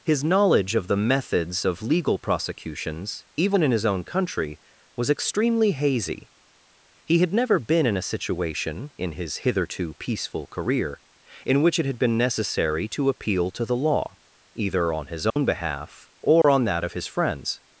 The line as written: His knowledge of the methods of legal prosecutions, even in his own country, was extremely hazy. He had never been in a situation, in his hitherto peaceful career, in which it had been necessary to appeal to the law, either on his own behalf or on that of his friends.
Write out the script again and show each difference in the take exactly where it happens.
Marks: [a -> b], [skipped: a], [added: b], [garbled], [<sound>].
His knowledge of the methods of legal prosecutions, even in his own country, was extremely hazy. He had never been in a situation, in his hitherto peaceful career, in which it had been necessary to appeal to the law, either on his own [dropout] behalf or [dropout] on that of his friends.